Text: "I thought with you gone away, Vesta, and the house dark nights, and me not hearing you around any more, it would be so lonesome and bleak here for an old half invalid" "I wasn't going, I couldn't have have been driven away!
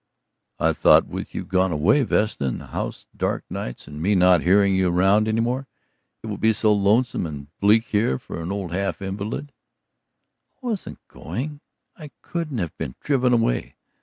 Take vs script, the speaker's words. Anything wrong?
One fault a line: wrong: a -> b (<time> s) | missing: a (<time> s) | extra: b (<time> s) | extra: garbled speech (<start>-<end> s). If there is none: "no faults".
missing: have (12.8 s)